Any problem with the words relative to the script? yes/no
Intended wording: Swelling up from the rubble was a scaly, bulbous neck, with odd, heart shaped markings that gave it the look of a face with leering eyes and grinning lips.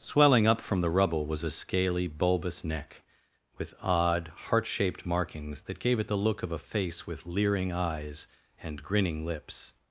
no